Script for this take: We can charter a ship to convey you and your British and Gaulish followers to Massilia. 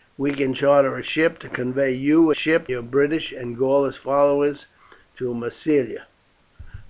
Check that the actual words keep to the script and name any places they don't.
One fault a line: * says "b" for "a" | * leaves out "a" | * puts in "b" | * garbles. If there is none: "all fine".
* says "ship" for "and"